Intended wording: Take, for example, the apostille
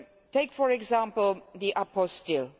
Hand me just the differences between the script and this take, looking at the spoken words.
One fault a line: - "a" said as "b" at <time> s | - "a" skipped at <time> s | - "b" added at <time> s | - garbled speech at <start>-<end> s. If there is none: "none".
none